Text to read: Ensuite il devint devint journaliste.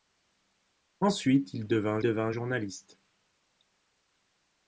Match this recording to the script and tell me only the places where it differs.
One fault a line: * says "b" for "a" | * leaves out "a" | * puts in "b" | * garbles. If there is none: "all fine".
all fine